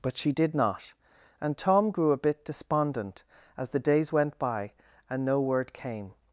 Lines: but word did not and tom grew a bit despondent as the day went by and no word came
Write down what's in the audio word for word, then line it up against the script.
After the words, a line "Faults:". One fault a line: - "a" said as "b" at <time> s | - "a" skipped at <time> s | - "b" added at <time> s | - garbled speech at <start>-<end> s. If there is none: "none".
but she did not and tom grew a bit despondent as the days went by and no word came
Faults:
- "word" said as "she" at 0.2 s
- "day" said as "days" at 3.8 s